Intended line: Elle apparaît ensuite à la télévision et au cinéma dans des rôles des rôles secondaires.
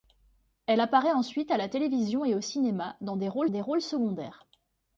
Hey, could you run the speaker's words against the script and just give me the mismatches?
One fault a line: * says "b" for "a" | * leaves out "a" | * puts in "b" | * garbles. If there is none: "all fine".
all fine